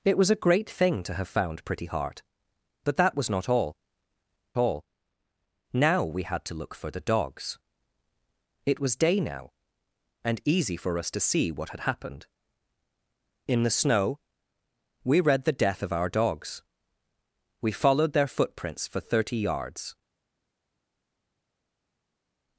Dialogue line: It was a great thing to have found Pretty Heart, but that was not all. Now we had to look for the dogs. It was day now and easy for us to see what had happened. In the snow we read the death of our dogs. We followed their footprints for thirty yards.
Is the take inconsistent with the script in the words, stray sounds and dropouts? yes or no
yes